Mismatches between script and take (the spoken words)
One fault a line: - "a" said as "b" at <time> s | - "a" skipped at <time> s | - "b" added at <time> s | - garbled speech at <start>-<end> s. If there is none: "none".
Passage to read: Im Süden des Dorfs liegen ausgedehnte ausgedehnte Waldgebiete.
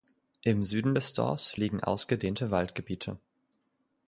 - "ausgedehnte" skipped at 2.5 s